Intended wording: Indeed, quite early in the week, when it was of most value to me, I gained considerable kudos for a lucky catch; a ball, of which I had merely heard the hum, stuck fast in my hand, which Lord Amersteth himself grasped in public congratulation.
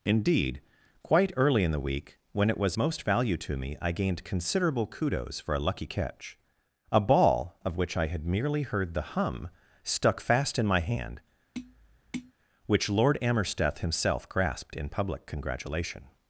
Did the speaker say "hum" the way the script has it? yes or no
yes